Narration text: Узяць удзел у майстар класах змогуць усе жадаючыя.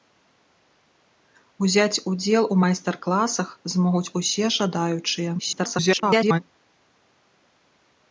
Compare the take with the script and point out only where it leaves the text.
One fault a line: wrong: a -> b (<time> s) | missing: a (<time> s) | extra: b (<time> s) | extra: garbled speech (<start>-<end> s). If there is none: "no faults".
extra: garbled speech (5.4-6.4 s)